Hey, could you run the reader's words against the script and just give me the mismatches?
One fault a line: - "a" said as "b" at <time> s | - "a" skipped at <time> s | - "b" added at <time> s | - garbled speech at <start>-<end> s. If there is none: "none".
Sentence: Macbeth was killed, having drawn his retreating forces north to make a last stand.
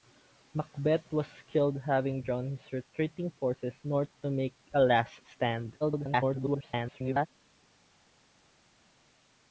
- garbled speech at 5.8-7.3 s